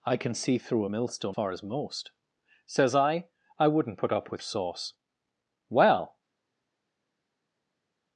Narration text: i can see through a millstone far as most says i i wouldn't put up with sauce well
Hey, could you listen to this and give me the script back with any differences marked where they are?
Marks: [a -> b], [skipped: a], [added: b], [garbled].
i can see through a millstone far as most says i i wouldn't put up with sauce well